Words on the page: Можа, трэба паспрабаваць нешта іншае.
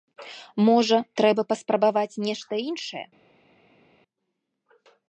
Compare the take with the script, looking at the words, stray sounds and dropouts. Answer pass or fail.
pass